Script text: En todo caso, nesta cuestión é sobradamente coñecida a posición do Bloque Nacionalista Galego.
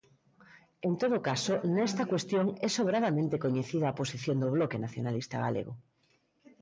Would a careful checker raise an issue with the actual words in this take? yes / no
no